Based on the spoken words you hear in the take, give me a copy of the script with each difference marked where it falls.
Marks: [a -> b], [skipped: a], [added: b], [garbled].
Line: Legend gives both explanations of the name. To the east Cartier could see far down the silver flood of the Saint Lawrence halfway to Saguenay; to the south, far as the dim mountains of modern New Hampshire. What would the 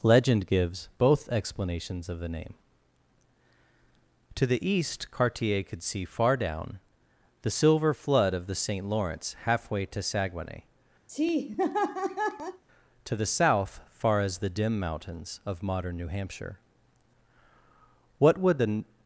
Legend gives both explanations of the name. To the east Cartier could see far down the silver flood of the Saint Lawrence halfway to Saguenay; to the south, far as the dim mountains of modern New Hampshire. What would the